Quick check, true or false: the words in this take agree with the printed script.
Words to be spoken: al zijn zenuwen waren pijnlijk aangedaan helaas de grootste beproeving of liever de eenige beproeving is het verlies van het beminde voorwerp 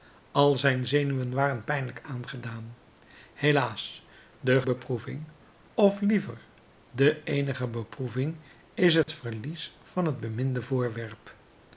false